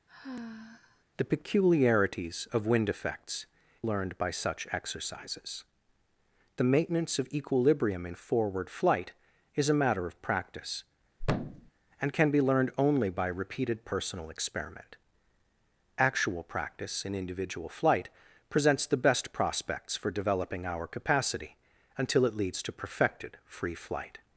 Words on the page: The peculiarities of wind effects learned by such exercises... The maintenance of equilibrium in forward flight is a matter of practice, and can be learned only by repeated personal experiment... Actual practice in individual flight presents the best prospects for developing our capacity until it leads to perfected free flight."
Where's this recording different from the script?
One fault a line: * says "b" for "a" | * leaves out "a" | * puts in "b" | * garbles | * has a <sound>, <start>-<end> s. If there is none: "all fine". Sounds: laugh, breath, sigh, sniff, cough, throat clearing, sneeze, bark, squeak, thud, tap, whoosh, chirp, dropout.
* has a sigh, 0.1-1.0 s
* has a thud, 11.2-11.7 s